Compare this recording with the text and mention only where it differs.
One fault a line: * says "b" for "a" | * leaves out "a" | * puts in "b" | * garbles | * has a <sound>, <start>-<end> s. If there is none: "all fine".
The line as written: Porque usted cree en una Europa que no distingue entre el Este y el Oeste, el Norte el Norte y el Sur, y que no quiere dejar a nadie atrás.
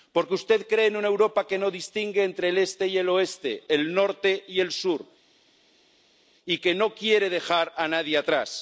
* leaves out "el Norte"